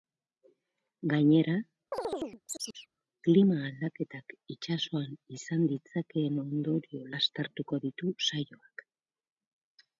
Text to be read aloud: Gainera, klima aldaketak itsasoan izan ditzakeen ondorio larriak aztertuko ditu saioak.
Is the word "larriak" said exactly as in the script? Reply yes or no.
no